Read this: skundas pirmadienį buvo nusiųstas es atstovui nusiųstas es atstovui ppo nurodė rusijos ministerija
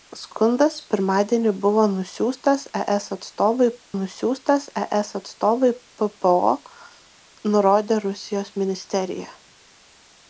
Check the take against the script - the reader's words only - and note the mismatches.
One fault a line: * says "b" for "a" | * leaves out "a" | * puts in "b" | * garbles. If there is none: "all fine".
all fine